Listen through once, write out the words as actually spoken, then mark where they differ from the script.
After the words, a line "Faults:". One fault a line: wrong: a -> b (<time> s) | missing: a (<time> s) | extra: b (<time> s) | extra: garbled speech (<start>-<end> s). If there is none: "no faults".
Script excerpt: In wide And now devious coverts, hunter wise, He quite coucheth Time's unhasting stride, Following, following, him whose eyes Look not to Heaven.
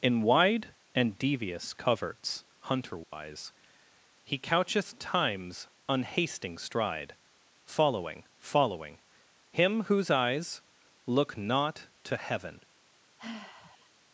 In wide And devious coverts, hunter wise, He coucheth Time's unhasting stride, Following, following, him whose eyes Look not to Heaven.
Faults:
missing: now (1.2 s)
missing: quite (4.4 s)